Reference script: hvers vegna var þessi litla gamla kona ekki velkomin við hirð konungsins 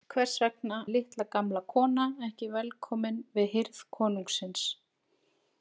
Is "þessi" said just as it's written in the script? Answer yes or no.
no